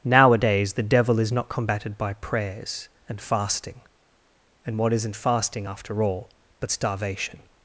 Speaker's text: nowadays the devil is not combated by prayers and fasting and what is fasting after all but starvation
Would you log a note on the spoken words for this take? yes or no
yes